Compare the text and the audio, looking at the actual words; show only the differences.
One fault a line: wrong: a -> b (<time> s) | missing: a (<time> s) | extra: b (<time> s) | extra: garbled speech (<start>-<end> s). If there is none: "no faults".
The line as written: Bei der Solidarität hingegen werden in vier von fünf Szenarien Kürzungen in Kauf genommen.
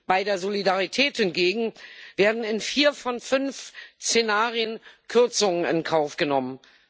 no faults